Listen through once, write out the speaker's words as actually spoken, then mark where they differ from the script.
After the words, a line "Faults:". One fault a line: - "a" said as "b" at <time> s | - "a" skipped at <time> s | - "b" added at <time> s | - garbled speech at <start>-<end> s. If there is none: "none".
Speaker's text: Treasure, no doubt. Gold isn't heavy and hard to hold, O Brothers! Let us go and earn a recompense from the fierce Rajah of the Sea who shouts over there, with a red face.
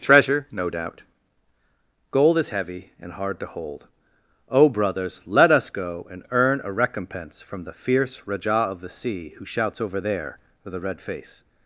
Treasure, no doubt. Gold is heavy and hard to hold, O Brothers! Let us go and earn a recompense from the fierce Rajah of the Sea who shouts over there, with a red face.
Faults:
- "isn't" said as "is" at 2.4 s